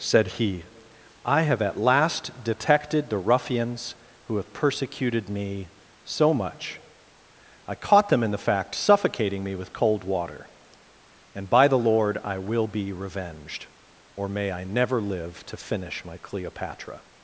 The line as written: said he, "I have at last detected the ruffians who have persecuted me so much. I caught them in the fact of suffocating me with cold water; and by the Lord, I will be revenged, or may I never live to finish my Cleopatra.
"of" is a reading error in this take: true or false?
true